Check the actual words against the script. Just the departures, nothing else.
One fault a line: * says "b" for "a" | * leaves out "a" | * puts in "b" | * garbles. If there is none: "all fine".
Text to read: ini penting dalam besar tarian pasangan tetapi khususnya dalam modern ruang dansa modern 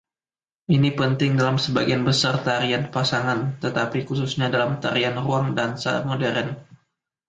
* puts in "sebagian"
* says "tarian" for "modern"